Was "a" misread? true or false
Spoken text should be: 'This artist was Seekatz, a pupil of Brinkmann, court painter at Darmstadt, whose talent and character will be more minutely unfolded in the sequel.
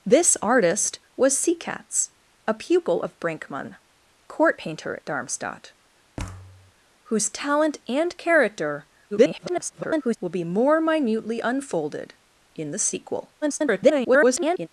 false